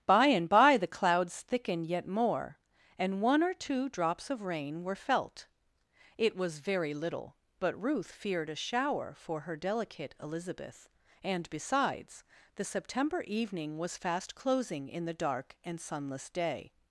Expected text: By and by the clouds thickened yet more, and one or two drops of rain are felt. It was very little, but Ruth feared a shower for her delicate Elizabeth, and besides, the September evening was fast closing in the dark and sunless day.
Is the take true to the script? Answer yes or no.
no